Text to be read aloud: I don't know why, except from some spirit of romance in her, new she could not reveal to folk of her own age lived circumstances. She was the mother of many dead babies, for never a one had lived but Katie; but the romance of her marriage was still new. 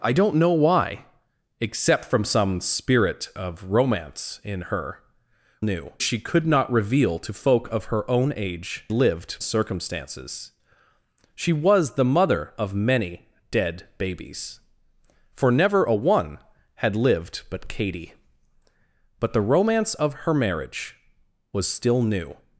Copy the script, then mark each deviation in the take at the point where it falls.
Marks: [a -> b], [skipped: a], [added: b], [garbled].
I don't know why, except from some spirit of romance in her, new she could not reveal to folk of her own age lived circumstances. She was the mother of many dead babies, for never a one had lived but Katie; but the romance of her marriage was still new.